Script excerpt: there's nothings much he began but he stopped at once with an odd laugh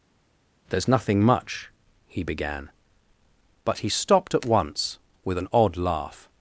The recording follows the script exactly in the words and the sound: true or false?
false